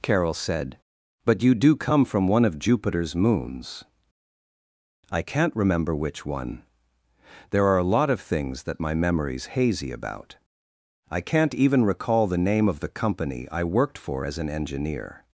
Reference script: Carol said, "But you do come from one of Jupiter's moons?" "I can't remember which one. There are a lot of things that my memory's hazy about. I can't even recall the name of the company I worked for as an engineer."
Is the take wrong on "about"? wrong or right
right